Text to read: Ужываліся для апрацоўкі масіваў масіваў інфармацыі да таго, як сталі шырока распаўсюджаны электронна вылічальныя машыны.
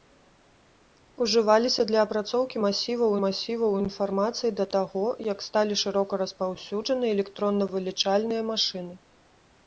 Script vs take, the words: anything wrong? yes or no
no